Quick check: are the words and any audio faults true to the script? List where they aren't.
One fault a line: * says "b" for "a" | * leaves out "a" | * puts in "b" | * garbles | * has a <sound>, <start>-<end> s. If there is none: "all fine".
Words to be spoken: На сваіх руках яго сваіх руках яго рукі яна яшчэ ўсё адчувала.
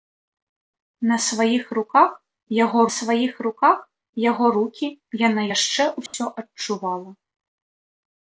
* has a dropout, 6.1-6.1 s